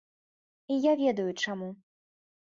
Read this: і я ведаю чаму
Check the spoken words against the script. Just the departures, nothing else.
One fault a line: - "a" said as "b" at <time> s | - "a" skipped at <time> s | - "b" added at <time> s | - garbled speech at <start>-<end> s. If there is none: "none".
none